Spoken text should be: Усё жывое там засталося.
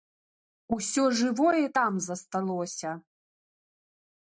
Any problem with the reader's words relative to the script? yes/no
no